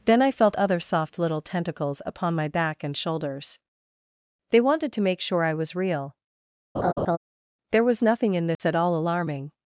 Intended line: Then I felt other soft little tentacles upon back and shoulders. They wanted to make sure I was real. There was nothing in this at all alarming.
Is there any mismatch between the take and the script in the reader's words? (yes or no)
yes